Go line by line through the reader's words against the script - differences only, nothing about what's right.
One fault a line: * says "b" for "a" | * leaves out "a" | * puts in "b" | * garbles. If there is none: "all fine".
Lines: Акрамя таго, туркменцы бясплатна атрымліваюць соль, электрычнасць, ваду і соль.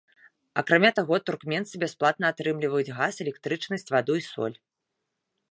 * says "газ" for "соль"